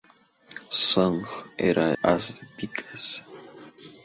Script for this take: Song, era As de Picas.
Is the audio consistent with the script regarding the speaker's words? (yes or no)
yes